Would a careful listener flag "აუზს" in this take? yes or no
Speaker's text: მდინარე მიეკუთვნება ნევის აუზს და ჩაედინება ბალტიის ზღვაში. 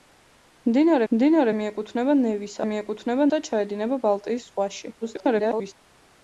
yes